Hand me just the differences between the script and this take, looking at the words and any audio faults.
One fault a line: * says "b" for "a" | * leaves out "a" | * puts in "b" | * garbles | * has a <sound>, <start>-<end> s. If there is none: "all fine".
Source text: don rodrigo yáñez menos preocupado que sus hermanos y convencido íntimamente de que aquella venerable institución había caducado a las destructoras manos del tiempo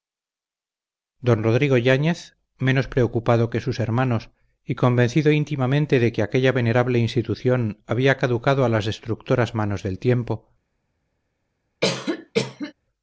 * has a cough, 11.8-12.7 s